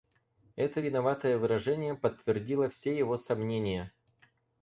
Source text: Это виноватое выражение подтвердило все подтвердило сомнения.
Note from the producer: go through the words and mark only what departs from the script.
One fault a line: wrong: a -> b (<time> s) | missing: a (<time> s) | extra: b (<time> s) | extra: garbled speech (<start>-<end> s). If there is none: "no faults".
wrong: подтвердило -> его (3.0 s)